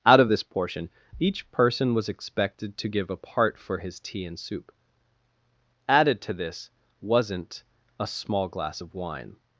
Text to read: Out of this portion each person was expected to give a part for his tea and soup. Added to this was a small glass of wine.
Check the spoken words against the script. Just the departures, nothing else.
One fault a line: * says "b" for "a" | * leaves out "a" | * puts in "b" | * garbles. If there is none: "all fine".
* says "wasn't" for "was"